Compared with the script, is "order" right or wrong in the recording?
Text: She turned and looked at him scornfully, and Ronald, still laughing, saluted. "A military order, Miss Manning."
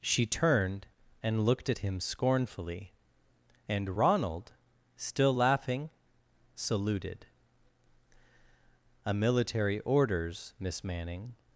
wrong